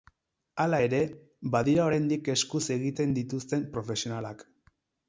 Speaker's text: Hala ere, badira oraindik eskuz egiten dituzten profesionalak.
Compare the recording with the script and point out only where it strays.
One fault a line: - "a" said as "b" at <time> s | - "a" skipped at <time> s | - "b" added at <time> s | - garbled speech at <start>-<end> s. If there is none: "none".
none